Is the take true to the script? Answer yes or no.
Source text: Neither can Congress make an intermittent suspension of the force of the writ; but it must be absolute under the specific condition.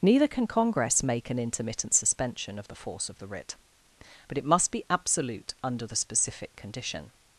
yes